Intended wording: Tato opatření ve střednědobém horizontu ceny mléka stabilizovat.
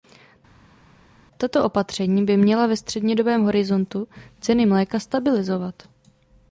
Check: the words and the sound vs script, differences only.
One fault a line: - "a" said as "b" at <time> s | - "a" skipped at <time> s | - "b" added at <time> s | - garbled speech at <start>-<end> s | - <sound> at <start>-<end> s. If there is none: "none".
- "by měla" added at 2.2 s